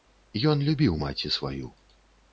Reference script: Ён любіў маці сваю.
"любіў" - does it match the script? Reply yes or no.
yes